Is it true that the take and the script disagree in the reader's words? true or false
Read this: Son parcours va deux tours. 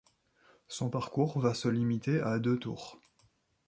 true